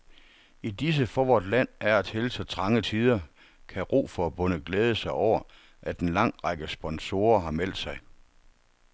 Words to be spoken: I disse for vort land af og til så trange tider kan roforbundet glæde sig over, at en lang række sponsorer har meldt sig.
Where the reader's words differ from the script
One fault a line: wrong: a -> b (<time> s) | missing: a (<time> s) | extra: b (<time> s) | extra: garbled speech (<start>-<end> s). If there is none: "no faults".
no faults